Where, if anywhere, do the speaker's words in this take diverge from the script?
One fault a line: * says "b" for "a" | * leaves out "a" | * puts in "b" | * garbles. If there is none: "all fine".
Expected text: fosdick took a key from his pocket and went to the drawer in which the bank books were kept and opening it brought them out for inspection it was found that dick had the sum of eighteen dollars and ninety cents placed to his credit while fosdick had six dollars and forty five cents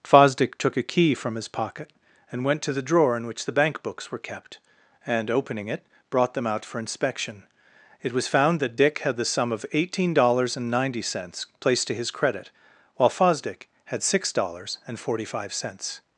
all fine